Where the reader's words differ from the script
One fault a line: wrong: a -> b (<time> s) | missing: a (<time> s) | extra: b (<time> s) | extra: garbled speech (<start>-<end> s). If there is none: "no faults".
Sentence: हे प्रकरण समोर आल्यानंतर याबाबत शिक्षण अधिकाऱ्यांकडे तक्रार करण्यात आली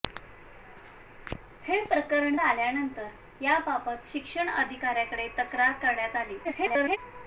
missing: समोर (2.4 s)
extra: garbled speech (6.4-7.0 s)